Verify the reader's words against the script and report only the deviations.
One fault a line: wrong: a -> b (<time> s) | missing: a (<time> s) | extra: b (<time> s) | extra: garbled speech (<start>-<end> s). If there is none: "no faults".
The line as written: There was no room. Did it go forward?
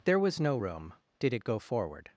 no faults